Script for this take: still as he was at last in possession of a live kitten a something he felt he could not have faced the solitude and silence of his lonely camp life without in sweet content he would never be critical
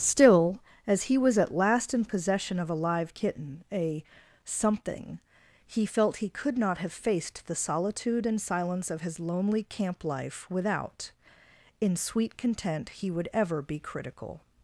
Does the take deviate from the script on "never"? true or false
true